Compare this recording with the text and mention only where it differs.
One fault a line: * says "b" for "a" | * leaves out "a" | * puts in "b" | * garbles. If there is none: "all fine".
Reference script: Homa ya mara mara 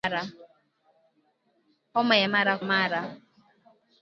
all fine